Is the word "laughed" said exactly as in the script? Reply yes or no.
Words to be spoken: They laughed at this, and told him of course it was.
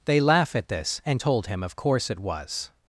no